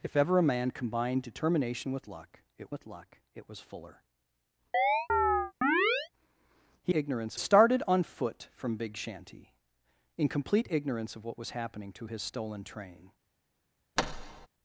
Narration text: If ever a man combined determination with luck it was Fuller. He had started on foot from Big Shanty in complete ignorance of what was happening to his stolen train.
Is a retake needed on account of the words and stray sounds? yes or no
yes